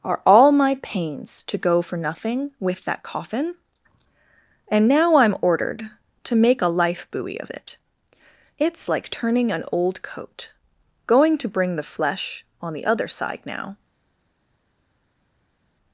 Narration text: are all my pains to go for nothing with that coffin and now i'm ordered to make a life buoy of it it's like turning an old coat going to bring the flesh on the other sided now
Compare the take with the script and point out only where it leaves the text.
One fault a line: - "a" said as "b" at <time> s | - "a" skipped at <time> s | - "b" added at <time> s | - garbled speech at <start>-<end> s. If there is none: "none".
- "sided" said as "side" at 13.1 s